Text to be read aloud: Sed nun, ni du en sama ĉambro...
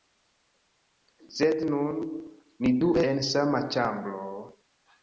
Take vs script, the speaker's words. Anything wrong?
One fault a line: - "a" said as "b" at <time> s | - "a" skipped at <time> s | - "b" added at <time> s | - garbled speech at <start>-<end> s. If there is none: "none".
none